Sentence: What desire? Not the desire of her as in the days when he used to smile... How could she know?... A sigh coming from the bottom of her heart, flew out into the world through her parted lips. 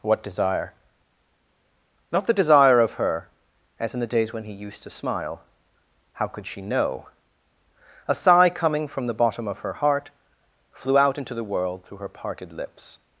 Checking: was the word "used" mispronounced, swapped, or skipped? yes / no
no